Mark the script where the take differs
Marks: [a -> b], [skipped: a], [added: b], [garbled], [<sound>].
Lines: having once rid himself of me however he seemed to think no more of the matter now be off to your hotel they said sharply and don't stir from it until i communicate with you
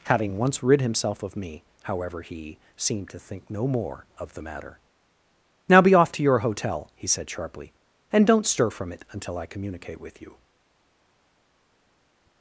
having once rid himself of me however he seemed to think no more of the matter now be off to your hotel [they -> he] said sharply and don't stir from it until i communicate with you